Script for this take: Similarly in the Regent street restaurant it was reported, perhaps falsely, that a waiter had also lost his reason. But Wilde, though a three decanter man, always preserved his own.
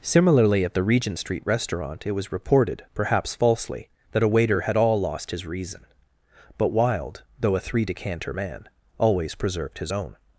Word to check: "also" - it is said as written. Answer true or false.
false